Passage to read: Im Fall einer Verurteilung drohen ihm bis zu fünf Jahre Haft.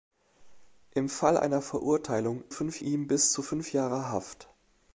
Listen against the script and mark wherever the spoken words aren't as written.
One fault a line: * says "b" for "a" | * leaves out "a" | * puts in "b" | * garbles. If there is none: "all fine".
* says "fünf" for "drohen"